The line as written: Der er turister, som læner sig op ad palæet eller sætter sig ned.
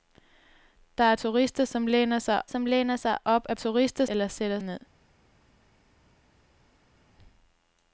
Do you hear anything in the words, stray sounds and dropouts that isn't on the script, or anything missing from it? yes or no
yes